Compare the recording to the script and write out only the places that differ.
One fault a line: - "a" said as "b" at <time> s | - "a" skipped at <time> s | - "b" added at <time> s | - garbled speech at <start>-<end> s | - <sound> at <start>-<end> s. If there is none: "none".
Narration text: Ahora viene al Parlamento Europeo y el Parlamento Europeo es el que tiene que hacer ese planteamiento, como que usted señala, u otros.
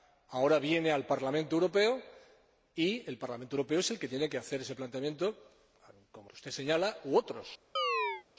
- chirp at 7.8-8.2 s